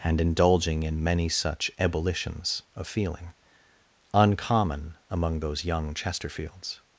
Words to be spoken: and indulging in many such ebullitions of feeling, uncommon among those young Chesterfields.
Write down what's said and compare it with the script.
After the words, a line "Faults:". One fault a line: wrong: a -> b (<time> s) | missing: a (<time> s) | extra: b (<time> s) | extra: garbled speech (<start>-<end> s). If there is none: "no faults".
and indulging in many such ebullitions of feeling, uncommon among those young Chesterfields.
Faults:
no faults